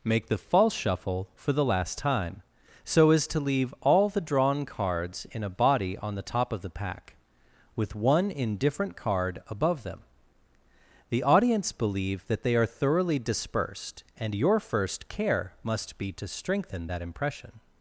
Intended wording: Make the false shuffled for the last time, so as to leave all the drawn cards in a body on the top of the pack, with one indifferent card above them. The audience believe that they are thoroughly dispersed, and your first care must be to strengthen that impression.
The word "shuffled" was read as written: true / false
false